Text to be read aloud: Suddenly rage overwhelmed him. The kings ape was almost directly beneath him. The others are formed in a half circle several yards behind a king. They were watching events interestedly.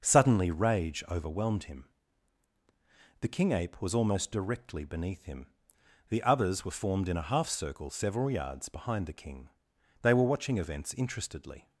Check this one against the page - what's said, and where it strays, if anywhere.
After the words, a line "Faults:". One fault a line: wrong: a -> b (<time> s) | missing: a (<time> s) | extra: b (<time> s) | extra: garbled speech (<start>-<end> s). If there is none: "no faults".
Suddenly rage overwhelmed him. The king ape was almost directly beneath him. The others were formed in a half circle several yards behind the king. They were watching events interestedly.
Faults:
wrong: kings -> king (3.3 s)
wrong: are -> were (6.7 s)
wrong: a -> the (9.1 s)